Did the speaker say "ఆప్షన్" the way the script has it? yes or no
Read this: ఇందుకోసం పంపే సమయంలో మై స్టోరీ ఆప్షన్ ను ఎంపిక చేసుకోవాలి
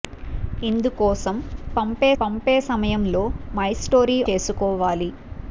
no